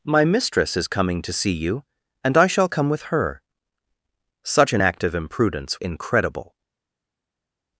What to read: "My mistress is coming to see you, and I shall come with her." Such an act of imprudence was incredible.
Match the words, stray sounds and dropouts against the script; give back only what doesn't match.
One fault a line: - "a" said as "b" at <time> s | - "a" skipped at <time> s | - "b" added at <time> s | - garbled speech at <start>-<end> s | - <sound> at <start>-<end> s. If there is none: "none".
- "was" skipped at 5.8 s